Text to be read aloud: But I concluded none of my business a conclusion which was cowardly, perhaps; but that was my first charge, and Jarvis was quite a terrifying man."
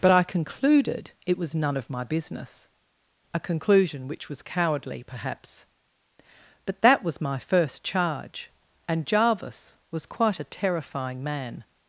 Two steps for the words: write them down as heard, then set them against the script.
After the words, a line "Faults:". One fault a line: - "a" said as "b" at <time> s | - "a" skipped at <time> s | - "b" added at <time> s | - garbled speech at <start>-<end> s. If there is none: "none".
But I concluded it was none of my business a conclusion which was cowardly, perhaps; but that was my first charge, and Jarvis was quite a terrifying man."
Faults:
- "it was" added at 1.3 s